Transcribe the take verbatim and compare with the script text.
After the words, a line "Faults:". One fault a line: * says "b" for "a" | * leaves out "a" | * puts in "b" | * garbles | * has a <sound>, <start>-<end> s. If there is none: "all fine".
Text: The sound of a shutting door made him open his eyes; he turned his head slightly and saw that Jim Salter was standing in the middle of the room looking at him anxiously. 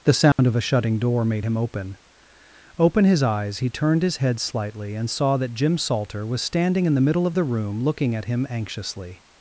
The sound of a shutting door made him open open his eyes; he turned his head slightly and saw that Jim Salter was standing in the middle of the room looking at him anxiously.
Faults:
* has a dropout, 0.3-0.4 s
* puts in "open"